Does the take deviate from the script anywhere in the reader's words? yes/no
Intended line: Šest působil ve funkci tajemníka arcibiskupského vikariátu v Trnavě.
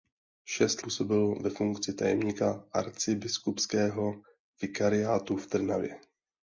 no